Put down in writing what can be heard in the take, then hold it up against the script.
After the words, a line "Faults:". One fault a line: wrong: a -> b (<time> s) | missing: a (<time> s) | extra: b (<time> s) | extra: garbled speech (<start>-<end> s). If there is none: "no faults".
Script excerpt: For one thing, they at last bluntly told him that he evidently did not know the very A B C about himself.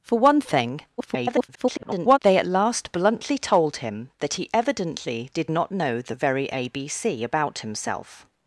For one thing, [garbled] they at last bluntly told him that he evidently did not know the very A B C about himself.
Faults:
extra: garbled speech (1.0-2.2 s)